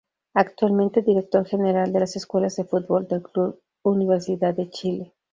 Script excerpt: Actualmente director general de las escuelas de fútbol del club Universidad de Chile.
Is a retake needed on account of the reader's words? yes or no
no